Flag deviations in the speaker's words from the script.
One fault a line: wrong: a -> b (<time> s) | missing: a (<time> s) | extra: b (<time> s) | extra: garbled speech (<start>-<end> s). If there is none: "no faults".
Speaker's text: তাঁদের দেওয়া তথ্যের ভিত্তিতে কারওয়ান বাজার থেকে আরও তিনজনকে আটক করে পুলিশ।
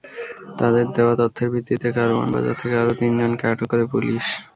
no faults